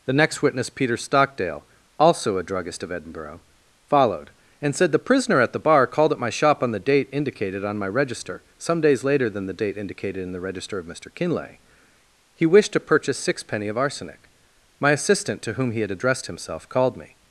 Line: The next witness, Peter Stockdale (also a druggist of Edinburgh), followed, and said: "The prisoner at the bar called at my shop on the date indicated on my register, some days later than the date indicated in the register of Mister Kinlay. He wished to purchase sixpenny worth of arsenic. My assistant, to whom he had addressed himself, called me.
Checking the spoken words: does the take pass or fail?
fail